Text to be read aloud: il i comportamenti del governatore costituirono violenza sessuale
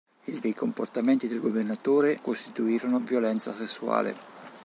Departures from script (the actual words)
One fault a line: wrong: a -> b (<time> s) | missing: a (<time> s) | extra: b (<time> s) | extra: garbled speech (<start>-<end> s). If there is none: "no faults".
no faults